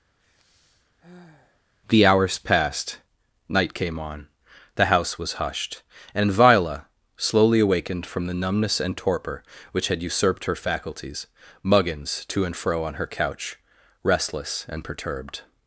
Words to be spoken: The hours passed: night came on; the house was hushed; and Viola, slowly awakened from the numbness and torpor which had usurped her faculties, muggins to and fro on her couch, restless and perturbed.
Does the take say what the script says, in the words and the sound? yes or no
no